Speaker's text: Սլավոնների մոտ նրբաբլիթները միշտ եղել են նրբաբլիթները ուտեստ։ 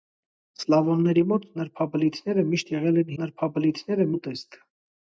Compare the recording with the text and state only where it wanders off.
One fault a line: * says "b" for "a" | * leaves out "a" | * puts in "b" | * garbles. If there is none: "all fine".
all fine